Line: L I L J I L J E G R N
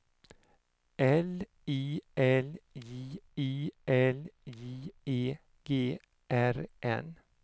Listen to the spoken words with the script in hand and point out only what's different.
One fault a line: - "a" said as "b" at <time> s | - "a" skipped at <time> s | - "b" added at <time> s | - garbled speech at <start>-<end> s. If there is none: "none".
none